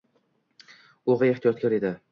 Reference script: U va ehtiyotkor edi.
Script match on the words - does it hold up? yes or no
yes